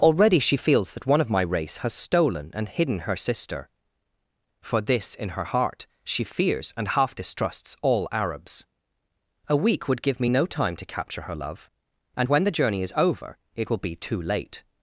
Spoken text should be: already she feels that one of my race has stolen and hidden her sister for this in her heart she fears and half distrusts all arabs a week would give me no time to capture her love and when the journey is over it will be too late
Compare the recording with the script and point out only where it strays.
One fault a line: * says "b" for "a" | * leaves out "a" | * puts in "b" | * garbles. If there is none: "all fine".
all fine